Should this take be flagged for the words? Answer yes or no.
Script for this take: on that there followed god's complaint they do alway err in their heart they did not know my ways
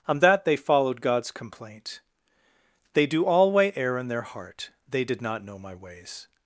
yes